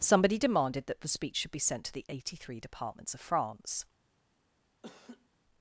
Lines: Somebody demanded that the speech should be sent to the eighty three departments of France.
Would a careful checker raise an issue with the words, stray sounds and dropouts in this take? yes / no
yes